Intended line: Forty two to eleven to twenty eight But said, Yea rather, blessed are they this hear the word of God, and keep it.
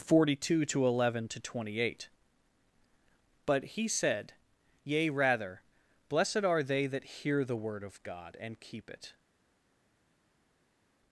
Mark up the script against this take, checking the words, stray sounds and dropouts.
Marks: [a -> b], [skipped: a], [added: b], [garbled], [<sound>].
Forty two to eleven to twenty eight But [added: he] said, Yea rather, blessed are they [this -> that] hear the word of God, and keep it.